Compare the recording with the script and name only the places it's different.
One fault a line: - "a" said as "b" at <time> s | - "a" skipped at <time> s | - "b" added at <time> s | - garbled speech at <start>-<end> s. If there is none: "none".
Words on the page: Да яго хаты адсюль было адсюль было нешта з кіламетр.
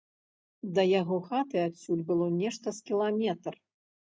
- "адсюль было" skipped at 2.3 s